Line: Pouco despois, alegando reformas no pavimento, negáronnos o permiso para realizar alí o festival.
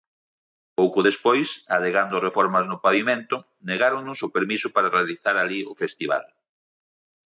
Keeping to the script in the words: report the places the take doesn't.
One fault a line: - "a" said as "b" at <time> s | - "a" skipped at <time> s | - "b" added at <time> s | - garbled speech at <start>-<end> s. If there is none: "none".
none